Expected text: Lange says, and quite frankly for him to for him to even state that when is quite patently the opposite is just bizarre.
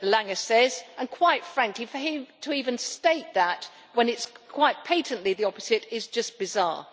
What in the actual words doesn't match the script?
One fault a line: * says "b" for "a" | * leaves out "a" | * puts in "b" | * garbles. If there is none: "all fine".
* leaves out "for him to"
* puts in "it"